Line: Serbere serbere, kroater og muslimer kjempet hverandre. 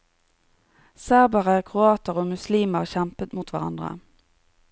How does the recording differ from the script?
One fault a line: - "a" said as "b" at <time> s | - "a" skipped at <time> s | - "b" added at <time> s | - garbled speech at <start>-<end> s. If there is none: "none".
- "serbere" skipped at 1.6 s
- "mot" added at 3.4 s